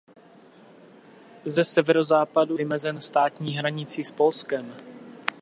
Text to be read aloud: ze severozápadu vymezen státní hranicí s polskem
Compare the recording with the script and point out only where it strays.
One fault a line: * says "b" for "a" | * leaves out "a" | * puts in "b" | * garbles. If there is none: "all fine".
all fine